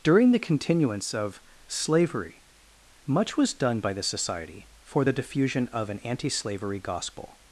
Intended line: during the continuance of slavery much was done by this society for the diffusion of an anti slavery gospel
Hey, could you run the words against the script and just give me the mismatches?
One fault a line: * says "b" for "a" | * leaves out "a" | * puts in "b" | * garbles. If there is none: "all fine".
all fine